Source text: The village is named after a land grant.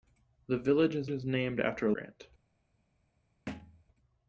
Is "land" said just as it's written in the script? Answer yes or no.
no